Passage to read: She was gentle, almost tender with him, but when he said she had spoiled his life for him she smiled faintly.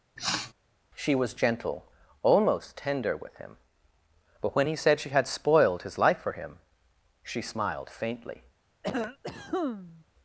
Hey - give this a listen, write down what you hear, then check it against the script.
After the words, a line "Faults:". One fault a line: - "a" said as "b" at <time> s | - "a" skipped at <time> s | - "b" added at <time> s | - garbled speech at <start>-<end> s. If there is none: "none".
She was gentle, almost tender with him, but when he said she had spoiled his life for him she smiled faintly.
Faults:
none